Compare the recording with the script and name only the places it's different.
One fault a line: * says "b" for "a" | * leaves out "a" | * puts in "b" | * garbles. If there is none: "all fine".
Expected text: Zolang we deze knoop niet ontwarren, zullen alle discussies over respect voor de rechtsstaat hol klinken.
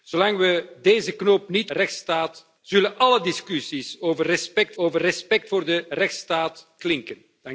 * says "rechtsstaat" for "ontwarren"
* puts in "over respect"
* leaves out "hol"